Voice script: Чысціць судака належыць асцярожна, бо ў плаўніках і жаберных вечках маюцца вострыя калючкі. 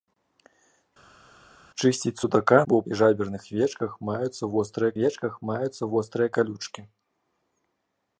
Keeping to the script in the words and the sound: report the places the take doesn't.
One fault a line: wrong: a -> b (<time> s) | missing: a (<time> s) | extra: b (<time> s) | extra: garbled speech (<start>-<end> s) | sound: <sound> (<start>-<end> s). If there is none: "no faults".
missing: належыць асцярожна (2.6 s)
missing: плаўніках (2.8 s)
extra: вечках маюцца вострыя (5.0 s)